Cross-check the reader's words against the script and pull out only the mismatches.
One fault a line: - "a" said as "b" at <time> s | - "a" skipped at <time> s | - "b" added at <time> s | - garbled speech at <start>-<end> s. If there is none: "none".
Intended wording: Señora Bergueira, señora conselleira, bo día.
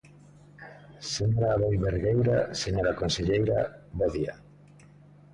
- "Aboi" added at 1.5 s